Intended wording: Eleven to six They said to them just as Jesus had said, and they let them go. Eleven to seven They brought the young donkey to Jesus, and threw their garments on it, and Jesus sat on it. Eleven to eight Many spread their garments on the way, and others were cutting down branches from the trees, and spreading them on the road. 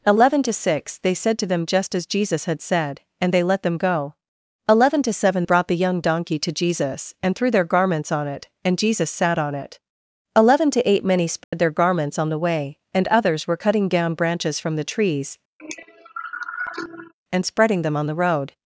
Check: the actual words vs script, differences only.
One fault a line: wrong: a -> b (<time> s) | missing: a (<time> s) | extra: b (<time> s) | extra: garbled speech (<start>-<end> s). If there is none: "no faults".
missing: They (5.4 s)